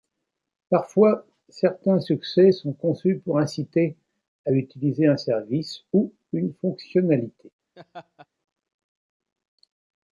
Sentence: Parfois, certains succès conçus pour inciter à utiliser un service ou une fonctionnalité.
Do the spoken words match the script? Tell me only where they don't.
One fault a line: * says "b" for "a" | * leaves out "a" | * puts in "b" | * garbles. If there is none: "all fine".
* puts in "sont"